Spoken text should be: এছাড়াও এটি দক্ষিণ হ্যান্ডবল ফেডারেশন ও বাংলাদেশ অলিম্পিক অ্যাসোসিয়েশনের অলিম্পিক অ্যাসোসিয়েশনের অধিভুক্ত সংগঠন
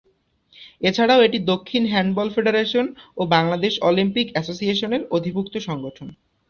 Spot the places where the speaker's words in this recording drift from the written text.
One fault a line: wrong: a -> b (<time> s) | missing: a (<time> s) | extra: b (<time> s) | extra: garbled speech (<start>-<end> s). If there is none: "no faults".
missing: অলিম্পিক অ্যাসোসিয়েশনের (5.0 s)